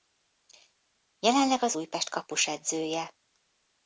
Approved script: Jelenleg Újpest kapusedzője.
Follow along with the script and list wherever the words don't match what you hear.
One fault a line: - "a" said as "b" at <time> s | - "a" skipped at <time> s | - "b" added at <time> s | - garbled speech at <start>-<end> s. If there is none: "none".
- "az" added at 1.6 s